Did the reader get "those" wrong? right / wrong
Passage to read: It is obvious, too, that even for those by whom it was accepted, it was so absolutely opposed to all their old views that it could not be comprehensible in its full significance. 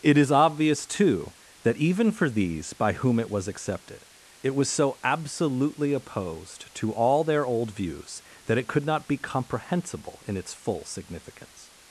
wrong